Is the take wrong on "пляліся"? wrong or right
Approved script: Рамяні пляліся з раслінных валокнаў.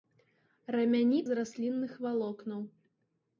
wrong